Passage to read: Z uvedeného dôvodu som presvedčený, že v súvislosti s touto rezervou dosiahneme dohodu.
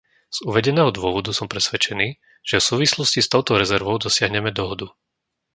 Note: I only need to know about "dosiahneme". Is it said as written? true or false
true